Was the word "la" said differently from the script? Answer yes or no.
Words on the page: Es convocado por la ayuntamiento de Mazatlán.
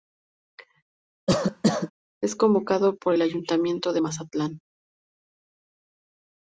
yes